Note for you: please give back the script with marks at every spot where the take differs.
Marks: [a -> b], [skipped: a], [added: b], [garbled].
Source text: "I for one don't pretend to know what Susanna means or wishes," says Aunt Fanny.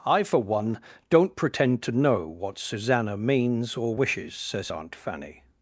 "I for one don't pretend to know what Susanna means or wishes," says Aunt Fanny.